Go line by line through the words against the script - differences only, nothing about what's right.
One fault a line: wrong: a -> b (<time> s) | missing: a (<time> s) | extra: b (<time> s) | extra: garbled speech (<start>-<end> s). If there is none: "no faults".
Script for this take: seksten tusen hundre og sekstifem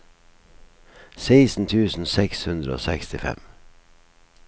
extra: seks (2.2 s)